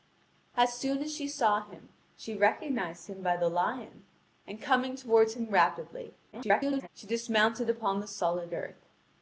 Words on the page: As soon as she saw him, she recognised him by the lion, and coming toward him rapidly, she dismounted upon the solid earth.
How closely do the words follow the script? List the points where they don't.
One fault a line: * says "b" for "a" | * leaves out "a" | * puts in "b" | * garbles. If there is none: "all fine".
* garbles